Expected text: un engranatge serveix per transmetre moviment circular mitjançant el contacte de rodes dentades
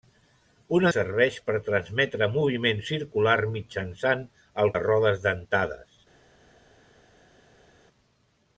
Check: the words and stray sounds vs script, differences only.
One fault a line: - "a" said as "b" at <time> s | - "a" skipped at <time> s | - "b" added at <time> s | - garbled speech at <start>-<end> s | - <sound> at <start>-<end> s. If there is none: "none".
- "engranatge" skipped at 0.8 s
- "contacte" skipped at 4.7 s